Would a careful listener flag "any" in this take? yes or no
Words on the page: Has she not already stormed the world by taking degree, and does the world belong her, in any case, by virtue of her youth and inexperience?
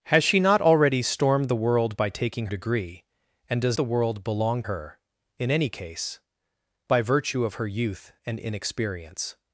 no